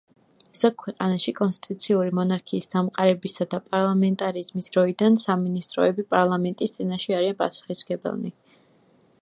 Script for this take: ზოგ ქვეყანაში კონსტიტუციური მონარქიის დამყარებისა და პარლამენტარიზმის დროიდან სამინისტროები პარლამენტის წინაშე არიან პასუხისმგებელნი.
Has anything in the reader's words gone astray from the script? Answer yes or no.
no